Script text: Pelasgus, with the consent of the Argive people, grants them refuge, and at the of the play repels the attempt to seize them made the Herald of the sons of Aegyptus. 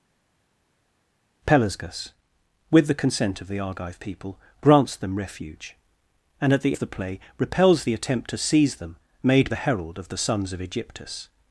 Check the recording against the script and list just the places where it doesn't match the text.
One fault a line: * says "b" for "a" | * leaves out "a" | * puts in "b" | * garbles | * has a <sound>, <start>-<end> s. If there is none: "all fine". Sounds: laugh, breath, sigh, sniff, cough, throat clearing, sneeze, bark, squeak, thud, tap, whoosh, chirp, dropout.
all fine